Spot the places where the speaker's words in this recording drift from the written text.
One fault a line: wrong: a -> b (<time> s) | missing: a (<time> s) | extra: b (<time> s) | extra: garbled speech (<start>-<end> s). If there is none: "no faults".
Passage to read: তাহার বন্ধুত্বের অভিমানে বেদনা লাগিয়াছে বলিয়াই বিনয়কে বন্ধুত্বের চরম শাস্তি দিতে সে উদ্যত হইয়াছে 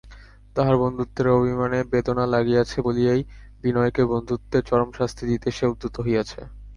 no faults